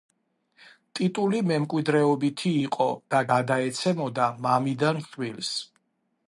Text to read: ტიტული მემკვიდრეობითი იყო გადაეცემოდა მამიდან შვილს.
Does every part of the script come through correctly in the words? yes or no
no